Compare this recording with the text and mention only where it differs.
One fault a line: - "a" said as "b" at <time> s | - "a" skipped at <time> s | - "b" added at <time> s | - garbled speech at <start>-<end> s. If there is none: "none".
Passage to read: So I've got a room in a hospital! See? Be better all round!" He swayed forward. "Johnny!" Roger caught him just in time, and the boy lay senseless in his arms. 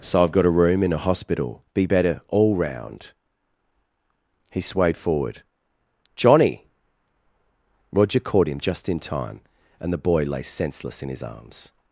- "See" skipped at 1.6 s